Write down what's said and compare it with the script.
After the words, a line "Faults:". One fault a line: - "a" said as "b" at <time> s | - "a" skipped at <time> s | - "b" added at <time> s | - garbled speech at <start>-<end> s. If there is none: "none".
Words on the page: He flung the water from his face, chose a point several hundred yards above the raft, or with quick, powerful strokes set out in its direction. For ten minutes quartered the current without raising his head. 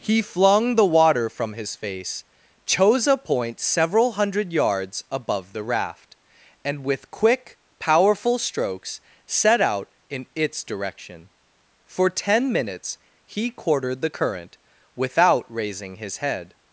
He flung the water from his face, chose a point several hundred yards above the raft, and with quick, powerful strokes set out in its direction. For ten minutes he quartered the current without raising his head.
Faults:
- "or" said as "and" at 6.6 s
- "he" added at 13.3 s